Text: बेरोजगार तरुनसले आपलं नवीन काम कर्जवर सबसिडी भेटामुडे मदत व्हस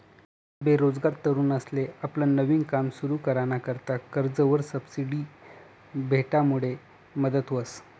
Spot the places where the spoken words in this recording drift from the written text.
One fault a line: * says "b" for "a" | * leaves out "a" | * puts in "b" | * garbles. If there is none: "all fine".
* puts in "सुरु कराना करता"